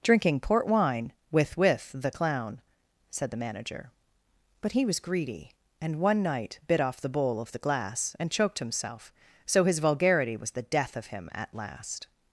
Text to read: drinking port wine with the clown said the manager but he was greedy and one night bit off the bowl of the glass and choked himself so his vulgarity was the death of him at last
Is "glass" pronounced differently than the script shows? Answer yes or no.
no